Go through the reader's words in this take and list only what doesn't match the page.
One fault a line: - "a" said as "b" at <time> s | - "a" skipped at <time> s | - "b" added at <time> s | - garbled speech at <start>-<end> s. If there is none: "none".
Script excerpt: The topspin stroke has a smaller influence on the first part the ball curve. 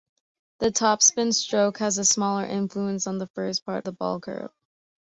none